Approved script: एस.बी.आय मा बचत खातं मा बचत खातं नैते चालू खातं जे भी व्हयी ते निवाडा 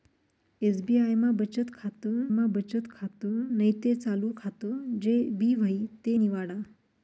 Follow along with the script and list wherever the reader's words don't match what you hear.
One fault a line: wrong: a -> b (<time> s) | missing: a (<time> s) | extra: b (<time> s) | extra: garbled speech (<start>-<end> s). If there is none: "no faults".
no faults